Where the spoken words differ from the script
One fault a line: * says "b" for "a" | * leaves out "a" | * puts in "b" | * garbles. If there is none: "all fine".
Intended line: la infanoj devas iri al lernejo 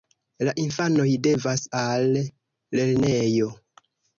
* leaves out "iri"